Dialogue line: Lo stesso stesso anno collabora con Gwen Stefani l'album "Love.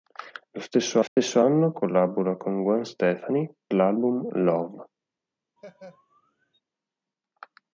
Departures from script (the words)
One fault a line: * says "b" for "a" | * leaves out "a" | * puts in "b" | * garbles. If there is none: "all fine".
all fine